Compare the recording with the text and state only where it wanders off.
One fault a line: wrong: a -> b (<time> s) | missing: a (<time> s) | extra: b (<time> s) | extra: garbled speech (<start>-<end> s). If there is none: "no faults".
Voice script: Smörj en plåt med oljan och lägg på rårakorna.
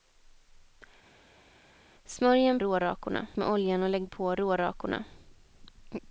wrong: plåt -> rårakorna (2.6 s)